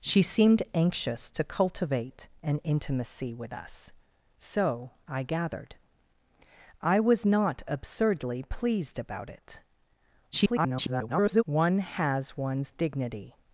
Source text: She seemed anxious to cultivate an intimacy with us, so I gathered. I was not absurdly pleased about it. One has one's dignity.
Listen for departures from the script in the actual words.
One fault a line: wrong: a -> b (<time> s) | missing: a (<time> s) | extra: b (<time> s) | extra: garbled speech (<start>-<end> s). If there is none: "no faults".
extra: garbled speech (10.3-11.4 s)